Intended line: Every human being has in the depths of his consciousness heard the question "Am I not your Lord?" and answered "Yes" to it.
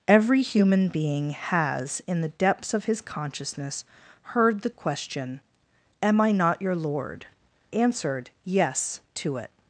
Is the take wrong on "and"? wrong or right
wrong